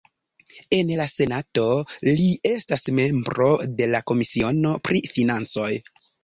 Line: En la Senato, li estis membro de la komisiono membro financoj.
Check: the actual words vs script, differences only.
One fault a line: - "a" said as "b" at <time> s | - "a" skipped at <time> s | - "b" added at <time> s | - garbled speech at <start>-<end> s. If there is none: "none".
- "estis" said as "estas" at 2.5 s
- "membro" said as "pri" at 4.9 s